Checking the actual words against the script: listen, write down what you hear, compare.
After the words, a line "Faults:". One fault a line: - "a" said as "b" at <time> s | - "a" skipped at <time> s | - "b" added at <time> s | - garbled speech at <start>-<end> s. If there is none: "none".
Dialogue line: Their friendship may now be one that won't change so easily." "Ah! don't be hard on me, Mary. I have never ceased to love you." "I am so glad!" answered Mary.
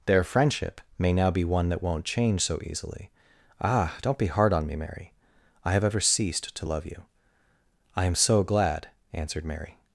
Their friendship may now be one that won't change so easily." "Ah! don't be hard on me, Mary. I have ever ceased to love you." "I am so glad!" answered Mary.
Faults:
- "never" said as "ever" at 5.8 s